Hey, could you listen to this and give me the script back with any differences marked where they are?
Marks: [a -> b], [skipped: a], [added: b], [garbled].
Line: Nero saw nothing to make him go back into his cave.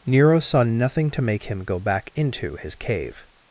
Nero saw nothing to make him go back into his cave.